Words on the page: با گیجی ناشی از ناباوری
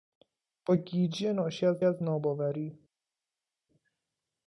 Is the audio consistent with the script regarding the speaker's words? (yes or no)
no